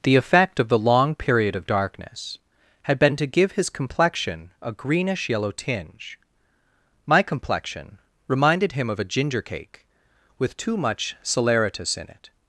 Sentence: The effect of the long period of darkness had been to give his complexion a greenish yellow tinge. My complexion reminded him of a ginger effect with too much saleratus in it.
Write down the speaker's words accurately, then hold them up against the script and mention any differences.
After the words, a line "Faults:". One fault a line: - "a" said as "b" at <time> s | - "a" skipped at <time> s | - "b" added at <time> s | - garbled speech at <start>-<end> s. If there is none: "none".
The effect of the long period of darkness had been to give his complexion a greenish yellow tinge. My complexion reminded him of a ginger cake with too much saleratus in it.
Faults:
- "effect" said as "cake" at 9.4 s